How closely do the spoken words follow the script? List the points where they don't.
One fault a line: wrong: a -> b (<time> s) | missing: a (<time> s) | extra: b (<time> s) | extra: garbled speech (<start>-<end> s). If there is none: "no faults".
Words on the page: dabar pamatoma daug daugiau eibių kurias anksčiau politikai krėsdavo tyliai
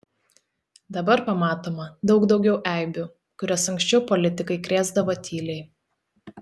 no faults